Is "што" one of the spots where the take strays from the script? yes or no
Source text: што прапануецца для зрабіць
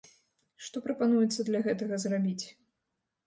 no